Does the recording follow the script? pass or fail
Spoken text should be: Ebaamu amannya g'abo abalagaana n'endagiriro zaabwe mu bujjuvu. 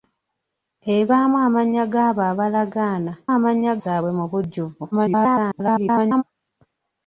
fail